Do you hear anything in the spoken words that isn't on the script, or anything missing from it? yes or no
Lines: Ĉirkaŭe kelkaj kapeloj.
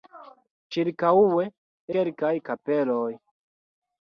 no